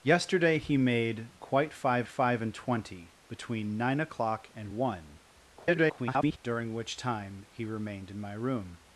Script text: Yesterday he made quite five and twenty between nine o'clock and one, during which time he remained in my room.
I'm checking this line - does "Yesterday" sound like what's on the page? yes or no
yes